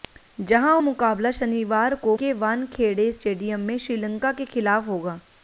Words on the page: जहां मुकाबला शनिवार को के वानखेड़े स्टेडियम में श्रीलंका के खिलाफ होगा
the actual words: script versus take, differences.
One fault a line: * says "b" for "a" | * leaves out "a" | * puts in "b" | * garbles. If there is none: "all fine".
all fine